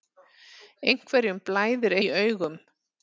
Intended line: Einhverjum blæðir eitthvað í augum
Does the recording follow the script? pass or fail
fail